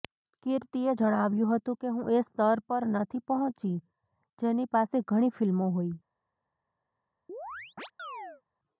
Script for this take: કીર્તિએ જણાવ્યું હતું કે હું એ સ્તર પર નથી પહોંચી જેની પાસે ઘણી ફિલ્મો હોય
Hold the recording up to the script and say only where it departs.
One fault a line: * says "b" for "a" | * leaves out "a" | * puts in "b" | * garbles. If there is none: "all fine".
all fine